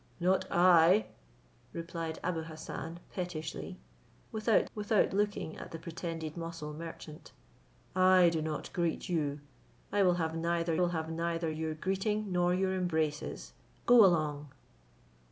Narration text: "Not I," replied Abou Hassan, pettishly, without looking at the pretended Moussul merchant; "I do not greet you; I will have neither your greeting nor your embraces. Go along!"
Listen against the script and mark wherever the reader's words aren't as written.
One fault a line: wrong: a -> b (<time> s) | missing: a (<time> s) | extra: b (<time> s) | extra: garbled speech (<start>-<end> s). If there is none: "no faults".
extra: without (4.7 s)
extra: will have neither (10.8 s)